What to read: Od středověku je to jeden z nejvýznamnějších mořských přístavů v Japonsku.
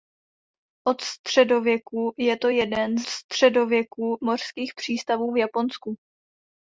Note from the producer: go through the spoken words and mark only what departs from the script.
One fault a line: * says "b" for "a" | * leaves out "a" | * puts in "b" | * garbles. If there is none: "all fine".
* says "středověku" for "nejvýznamnějších"